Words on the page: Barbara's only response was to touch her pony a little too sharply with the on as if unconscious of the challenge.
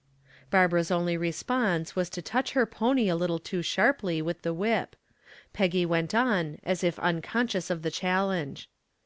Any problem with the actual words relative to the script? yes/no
yes